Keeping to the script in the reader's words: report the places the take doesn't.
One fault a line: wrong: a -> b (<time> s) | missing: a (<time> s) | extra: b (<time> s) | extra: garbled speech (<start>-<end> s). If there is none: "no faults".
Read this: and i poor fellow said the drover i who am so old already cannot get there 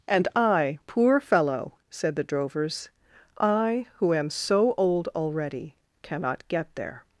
wrong: drover -> drovers (2.2 s)